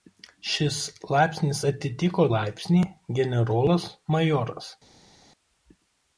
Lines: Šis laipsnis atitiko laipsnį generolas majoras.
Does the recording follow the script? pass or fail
pass